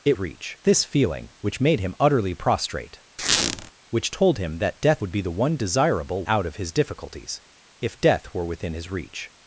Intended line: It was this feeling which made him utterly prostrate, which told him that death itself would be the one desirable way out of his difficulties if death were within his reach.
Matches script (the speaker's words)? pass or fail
fail